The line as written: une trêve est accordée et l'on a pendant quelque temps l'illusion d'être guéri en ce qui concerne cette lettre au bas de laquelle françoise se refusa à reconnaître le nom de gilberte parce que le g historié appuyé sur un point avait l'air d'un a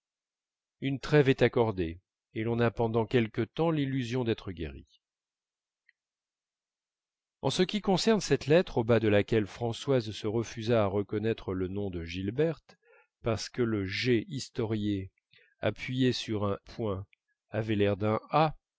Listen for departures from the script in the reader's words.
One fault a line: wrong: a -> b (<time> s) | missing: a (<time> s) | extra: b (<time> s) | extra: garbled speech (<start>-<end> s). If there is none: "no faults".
no faults